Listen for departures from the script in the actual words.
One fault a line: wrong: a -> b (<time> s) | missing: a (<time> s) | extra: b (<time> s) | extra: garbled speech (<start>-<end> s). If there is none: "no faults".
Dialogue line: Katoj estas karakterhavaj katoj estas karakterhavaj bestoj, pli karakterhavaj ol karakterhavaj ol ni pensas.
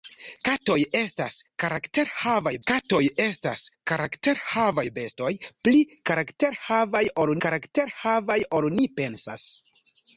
no faults